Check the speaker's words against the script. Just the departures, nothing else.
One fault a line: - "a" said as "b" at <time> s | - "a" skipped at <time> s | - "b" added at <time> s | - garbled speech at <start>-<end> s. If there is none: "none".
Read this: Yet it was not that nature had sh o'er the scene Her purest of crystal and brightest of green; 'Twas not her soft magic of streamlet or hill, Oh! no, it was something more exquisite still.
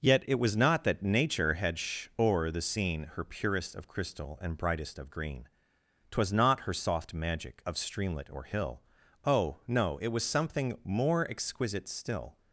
none